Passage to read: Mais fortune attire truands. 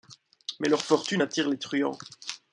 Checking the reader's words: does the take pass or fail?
fail